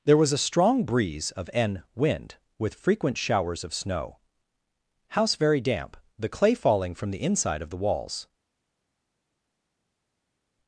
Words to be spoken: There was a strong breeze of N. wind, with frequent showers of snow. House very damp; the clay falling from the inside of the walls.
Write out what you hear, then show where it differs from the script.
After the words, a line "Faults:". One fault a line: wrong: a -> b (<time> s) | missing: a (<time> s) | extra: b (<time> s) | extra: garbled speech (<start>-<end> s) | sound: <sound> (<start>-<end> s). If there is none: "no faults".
There was a strong breeze of N. wind, with frequent showers of snow. House very damp; the clay falling from the inside of the walls.
Faults:
no faults